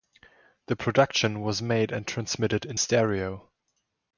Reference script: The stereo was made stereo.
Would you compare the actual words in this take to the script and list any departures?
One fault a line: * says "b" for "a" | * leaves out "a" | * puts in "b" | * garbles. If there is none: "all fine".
* says "production" for "stereo"
* puts in "and transmitted in"